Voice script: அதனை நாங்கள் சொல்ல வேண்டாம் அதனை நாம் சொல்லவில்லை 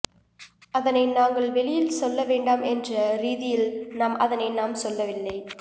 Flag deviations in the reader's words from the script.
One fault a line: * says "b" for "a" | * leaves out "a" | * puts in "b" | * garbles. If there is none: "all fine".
* puts in "வெளியில்"
* puts in "என்ற ரீதியில் நாம்"